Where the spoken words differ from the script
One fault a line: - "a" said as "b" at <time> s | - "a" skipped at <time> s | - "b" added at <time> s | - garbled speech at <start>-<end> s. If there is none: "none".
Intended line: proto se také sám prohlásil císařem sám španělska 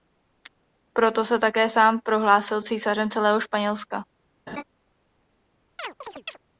- "sám" said as "celého" at 3.1 s